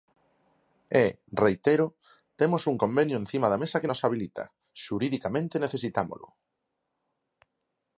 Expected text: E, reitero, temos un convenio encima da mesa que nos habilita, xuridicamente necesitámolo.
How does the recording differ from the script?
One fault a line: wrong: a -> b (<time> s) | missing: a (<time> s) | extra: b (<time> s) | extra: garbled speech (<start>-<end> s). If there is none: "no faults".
no faults